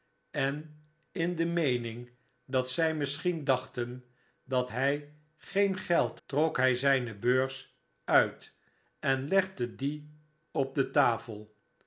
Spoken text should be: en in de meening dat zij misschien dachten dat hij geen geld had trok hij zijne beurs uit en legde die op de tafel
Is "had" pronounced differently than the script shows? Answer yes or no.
yes